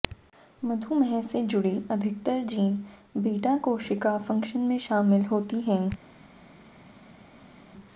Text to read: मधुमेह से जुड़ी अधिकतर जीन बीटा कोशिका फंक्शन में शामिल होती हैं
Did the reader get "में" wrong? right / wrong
right